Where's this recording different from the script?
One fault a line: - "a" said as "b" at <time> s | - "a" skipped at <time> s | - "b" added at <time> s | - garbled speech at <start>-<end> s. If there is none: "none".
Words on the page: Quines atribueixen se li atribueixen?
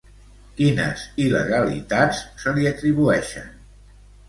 - "atribueixen" said as "il·legalitats" at 1.2 s